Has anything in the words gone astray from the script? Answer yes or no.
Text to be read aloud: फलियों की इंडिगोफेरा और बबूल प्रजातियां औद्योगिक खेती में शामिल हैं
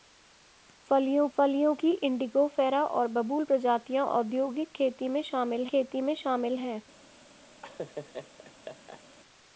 yes